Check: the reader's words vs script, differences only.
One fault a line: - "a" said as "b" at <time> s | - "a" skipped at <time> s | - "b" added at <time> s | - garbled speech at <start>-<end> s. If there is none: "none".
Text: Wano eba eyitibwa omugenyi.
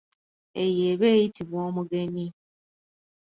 - "Wano" said as "Eyo" at 0.6 s